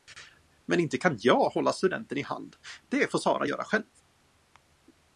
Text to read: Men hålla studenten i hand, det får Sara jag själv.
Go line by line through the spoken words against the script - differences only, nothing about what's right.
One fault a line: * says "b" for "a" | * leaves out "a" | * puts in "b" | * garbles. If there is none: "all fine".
* puts in "inte kan jag"
* says "göra" for "jag"